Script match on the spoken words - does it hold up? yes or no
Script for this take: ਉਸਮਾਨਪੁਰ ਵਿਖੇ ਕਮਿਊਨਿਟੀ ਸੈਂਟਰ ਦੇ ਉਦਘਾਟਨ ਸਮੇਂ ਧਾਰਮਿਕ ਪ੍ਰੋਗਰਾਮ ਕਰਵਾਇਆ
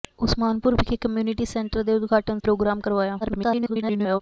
no